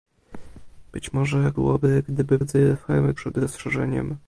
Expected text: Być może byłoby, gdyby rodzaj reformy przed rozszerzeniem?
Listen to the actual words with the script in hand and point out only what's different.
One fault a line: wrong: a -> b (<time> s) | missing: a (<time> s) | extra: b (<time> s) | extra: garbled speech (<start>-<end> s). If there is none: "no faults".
no faults